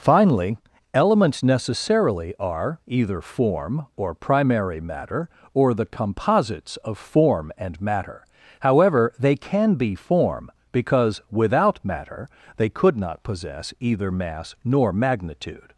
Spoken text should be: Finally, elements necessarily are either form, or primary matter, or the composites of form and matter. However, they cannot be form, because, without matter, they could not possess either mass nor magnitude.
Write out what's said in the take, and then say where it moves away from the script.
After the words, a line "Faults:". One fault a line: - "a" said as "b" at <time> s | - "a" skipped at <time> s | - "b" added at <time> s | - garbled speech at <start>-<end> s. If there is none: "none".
Finally, elements necessarily are either form, or primary matter, or the composites of form and matter. However, they can be form, because, without matter, they could not possess either mass nor magnitude.
Faults:
- "cannot" said as "can" at 9.3 s